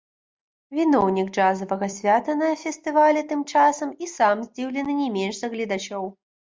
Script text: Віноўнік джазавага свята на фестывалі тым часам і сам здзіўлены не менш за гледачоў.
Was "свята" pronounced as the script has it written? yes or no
yes